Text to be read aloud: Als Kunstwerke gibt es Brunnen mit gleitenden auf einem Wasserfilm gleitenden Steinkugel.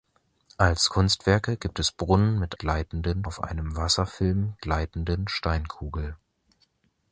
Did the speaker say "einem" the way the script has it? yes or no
yes